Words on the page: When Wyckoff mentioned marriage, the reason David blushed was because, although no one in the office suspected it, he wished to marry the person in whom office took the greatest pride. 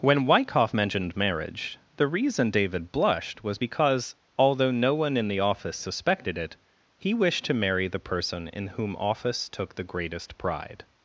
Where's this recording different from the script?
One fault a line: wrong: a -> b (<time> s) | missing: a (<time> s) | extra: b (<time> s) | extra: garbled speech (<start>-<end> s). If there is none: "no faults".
no faults